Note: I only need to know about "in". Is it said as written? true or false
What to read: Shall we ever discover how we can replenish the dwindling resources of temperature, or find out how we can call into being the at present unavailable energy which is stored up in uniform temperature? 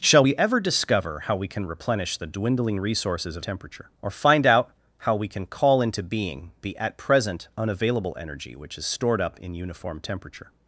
true